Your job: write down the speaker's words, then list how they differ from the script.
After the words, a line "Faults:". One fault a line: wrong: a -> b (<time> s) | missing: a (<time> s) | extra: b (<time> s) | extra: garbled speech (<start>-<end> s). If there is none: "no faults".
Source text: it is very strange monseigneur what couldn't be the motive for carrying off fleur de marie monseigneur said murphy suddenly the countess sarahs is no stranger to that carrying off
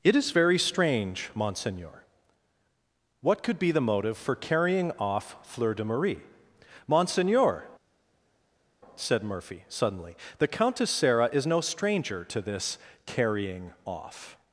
it is very strange monseigneur what could be the motive for carrying off fleur de marie monseigneur said murphy suddenly the countess sarah is no stranger to this carrying off
Faults:
wrong: couldn't -> could (3.4 s)
wrong: sarahs -> sarah (10.9 s)
wrong: that -> this (12.4 s)